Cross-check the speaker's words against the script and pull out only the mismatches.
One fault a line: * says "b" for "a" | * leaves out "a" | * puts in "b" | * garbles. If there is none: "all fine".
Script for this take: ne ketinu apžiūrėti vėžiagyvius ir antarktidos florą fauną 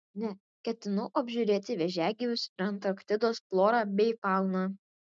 * puts in "bei"